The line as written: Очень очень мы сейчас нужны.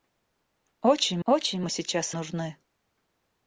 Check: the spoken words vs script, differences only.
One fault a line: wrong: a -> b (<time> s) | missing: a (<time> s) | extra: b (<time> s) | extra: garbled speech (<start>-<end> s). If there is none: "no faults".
no faults